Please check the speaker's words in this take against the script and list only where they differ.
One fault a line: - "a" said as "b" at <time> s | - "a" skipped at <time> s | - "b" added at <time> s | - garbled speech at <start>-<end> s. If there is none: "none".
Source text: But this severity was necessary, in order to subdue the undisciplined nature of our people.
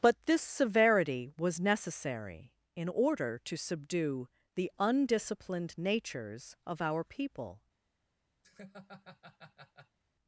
- "nature" said as "natures" at 5.8 s